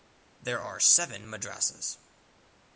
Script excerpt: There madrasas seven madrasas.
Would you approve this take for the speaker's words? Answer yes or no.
no